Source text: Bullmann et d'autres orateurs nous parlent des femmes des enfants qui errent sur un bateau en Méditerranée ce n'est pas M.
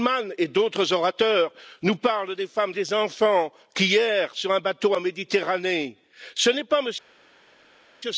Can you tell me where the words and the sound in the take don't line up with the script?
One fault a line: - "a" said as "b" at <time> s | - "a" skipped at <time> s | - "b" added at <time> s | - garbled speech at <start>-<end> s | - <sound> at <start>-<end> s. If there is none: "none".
none